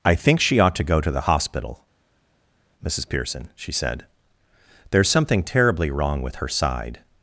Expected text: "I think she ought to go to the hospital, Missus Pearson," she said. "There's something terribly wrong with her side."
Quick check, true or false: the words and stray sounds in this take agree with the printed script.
true